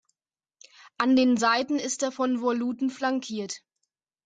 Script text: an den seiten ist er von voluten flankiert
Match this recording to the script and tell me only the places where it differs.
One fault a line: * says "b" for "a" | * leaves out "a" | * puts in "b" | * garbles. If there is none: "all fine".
all fine